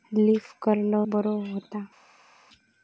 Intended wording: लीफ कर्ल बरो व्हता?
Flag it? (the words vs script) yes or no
no